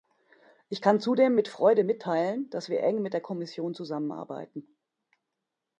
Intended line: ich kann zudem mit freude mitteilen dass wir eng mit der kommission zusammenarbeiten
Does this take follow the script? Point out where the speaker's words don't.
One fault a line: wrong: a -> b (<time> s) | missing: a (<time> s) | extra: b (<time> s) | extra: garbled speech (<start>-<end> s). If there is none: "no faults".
no faults